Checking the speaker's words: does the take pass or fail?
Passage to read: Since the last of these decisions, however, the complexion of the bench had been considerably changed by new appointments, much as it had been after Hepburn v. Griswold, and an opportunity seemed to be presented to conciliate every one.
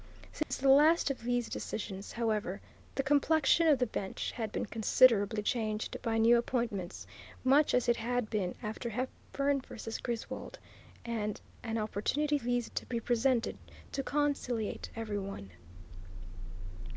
fail